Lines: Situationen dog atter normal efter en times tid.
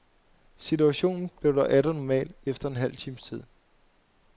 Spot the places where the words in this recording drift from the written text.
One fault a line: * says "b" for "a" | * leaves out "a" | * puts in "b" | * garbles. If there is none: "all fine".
* puts in "blev"
* puts in "halv"